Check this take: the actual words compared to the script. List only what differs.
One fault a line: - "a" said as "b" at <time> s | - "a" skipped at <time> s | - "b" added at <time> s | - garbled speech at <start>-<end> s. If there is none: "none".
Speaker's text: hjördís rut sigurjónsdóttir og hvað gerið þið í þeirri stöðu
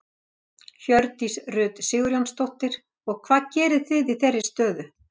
none